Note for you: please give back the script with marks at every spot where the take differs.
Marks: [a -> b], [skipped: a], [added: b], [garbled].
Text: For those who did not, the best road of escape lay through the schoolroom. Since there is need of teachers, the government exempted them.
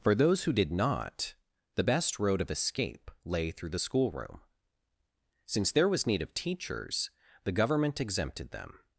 For those who did not, the best road of escape lay through the schoolroom. Since there [is -> was] need of teachers, the government exempted them.